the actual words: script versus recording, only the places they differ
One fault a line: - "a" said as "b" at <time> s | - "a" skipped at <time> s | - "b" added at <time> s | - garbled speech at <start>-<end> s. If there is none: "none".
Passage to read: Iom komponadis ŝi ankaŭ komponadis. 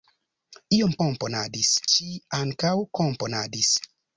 none